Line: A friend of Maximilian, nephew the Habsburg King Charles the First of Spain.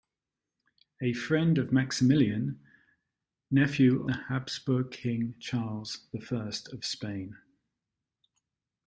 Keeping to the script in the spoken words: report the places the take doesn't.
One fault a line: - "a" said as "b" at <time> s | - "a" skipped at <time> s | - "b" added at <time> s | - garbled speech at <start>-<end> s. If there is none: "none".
none